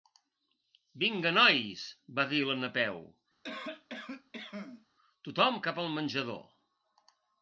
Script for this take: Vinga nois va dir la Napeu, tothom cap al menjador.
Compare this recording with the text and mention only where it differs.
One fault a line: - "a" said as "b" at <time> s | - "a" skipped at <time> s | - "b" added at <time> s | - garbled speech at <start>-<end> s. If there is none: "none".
none